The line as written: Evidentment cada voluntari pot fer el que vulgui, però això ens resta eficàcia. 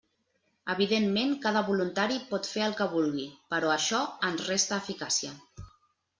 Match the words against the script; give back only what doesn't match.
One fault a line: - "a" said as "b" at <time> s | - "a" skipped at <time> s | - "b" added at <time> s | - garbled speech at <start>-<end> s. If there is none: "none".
none